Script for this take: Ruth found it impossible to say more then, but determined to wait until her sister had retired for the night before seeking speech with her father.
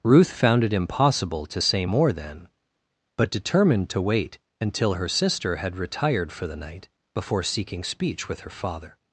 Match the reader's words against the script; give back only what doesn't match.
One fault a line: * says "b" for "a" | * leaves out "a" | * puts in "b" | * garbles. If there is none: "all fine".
all fine